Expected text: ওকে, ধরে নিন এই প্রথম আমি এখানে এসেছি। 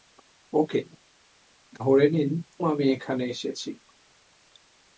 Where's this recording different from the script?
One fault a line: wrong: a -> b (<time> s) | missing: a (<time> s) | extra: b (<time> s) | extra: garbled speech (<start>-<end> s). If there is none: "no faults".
missing: এই প্রথম (2.3 s)